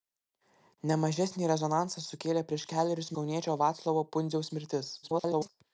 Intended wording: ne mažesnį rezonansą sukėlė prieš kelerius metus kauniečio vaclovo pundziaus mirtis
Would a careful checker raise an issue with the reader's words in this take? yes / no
yes